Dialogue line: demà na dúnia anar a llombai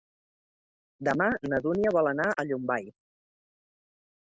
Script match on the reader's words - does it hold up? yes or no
no